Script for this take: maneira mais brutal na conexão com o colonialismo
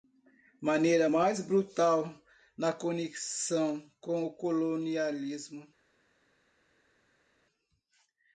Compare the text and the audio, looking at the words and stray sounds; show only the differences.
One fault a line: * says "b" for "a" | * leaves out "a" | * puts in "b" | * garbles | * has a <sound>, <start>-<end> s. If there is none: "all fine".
all fine